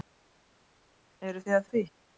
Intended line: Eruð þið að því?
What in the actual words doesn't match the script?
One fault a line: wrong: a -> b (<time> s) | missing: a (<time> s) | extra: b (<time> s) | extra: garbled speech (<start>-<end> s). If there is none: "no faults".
extra: að (1.6 s)